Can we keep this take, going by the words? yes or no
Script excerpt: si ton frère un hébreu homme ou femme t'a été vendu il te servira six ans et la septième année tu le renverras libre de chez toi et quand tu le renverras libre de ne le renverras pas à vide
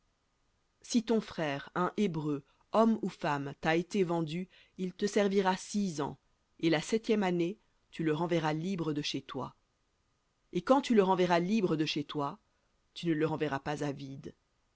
no